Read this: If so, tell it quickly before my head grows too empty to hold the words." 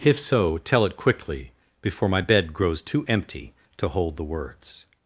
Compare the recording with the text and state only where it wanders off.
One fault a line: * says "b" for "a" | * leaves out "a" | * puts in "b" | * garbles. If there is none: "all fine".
* says "bed" for "head"